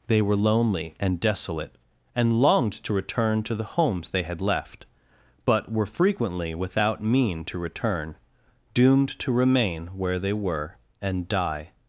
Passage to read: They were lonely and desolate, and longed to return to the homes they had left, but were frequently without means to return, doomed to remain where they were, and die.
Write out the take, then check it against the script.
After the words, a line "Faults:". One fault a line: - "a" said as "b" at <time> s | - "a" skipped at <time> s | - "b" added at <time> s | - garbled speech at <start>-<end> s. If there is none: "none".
They were lonely and desolate, and longed to return to the homes they had left, but were frequently without mean to return, doomed to remain where they were, and die.
Faults:
- "means" said as "mean" at 7.0 s